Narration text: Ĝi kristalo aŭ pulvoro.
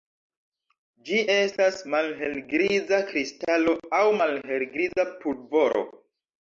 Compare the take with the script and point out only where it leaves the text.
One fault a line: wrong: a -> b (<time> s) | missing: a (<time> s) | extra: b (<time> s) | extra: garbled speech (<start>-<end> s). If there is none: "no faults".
extra: estas malhelgriza (1.3 s)
extra: malhelgriza (4.2 s)